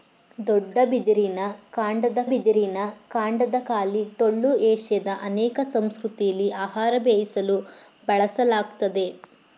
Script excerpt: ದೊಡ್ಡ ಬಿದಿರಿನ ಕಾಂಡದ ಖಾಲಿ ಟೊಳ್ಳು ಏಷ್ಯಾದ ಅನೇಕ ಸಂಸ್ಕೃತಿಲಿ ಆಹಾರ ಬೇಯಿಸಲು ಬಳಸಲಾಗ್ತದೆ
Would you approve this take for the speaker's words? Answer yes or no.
no